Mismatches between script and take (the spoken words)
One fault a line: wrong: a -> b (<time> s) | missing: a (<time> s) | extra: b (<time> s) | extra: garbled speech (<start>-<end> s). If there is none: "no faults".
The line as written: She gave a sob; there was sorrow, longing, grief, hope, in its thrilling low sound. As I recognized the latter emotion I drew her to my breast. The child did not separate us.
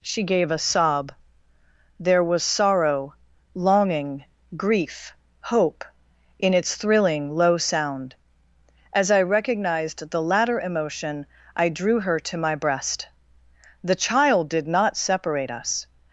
no faults